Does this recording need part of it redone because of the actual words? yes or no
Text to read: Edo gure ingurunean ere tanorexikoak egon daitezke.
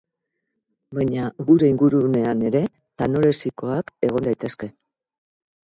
yes